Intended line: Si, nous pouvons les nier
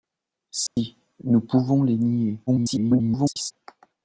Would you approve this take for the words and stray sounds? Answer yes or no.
no